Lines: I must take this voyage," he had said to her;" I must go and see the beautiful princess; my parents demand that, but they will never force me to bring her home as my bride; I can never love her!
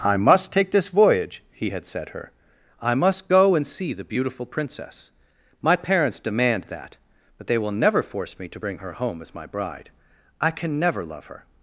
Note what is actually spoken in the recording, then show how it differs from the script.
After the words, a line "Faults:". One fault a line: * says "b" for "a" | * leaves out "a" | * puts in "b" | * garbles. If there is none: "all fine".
I must take this voyage," he had said her;" I must go and see the beautiful princess; my parents demand that, but they will never force me to bring her home as my bride; I can never love her!
Faults:
* leaves out "to"